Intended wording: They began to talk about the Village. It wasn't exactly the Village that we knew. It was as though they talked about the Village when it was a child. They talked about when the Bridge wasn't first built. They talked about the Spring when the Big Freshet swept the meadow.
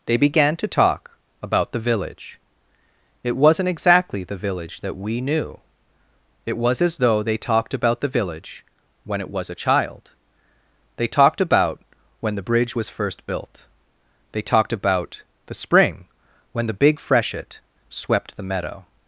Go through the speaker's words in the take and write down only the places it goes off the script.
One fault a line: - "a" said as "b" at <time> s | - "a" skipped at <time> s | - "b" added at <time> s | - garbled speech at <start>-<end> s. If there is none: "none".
- "wasn't" said as "was" at 12.7 s